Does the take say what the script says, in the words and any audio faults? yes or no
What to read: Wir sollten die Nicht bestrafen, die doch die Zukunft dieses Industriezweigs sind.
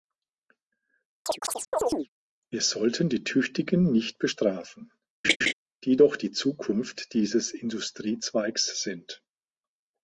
no